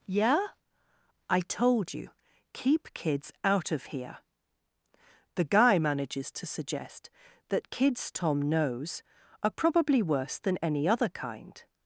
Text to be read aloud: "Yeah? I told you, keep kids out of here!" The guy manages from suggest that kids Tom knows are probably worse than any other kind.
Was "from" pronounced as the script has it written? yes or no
no